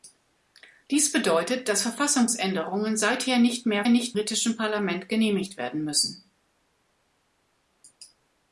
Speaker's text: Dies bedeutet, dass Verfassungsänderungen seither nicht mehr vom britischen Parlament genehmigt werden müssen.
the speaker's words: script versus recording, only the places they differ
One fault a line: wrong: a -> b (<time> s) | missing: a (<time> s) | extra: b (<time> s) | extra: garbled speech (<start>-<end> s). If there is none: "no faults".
wrong: vom -> nicht (3.9 s)